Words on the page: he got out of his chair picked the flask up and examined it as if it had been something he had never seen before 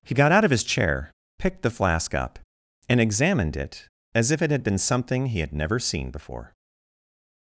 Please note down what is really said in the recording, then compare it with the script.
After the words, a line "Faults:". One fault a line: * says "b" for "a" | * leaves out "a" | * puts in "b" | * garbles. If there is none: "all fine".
he got out of his chair picked the flask up and examined it as if it had been something he had never seen before
Faults:
all fine